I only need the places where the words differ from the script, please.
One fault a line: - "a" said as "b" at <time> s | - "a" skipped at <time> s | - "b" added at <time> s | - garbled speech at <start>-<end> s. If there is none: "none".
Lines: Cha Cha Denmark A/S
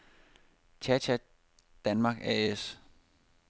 none